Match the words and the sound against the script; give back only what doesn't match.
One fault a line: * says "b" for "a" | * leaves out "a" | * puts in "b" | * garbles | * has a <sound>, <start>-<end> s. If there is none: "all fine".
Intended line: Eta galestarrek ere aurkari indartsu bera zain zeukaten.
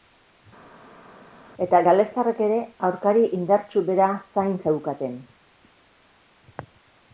all fine